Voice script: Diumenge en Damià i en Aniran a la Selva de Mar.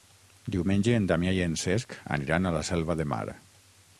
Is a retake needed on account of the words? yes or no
yes